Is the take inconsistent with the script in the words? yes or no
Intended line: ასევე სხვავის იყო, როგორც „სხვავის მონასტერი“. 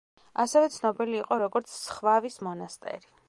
yes